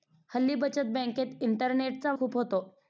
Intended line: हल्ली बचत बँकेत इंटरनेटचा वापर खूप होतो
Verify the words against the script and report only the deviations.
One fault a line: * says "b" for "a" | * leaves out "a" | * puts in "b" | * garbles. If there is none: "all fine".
* leaves out "वापर"